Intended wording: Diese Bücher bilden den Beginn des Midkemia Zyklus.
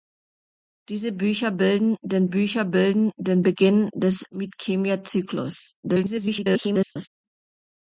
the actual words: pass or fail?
fail